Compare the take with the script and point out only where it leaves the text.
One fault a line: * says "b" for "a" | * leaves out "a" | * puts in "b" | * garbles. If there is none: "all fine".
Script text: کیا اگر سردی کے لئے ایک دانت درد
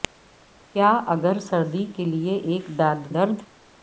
all fine